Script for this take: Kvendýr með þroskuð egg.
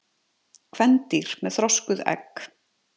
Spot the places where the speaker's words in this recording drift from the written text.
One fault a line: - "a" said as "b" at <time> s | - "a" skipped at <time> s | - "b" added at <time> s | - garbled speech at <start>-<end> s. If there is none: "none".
none